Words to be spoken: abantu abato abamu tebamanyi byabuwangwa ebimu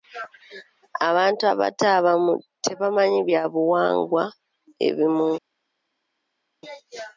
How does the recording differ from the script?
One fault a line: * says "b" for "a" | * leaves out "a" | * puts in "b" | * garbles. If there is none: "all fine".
all fine